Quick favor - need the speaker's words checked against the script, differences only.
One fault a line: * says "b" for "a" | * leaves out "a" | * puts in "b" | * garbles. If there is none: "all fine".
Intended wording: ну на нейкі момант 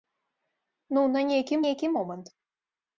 * puts in "нейкі"